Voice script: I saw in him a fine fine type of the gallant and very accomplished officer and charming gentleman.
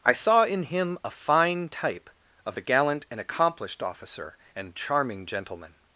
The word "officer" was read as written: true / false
true